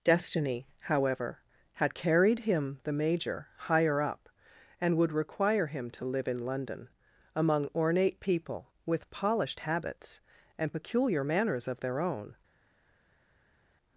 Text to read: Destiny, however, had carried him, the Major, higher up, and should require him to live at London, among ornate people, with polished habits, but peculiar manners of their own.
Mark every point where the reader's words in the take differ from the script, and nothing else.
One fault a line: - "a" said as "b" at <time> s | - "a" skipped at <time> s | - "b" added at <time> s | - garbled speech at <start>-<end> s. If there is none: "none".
- "should" said as "would" at 5.0 s
- "at" said as "in" at 6.3 s
- "but" said as "and" at 10.6 s